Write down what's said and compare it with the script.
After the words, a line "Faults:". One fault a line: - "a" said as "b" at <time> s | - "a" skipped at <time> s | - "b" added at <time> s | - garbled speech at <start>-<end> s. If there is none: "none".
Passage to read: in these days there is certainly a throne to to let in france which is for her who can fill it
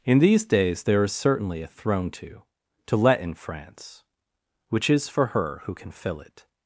in these days there is certainly a throne to to let in france which is for her who can fill it
Faults:
none